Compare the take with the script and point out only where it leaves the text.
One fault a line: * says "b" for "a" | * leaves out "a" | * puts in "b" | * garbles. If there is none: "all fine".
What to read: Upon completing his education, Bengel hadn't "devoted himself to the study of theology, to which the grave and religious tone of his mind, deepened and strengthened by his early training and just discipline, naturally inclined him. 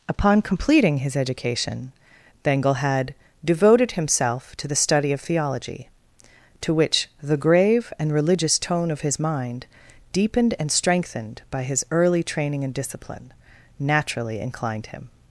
* says "had" for "hadn't"
* leaves out "just"